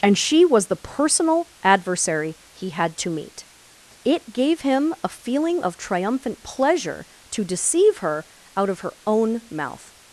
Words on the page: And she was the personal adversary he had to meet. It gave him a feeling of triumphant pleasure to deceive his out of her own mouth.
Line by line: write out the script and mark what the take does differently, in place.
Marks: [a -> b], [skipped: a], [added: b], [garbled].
And she was the personal adversary he had to meet. It gave him a feeling of triumphant pleasure to deceive [his -> her] out of her own mouth.